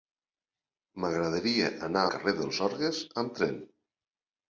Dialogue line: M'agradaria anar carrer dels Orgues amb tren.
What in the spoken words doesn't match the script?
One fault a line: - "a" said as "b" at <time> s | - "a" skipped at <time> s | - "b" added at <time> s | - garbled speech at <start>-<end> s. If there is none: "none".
none